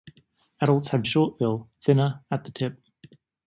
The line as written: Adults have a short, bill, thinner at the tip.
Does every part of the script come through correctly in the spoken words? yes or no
yes